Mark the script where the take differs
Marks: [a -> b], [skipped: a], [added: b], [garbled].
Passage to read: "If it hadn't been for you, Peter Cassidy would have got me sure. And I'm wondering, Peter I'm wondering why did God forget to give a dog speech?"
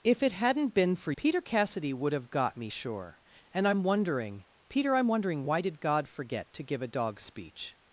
"If it hadn't been for [skipped: you,] Peter Cassidy would have got me sure. And I'm wondering, Peter I'm wondering why did God forget to give a dog speech?"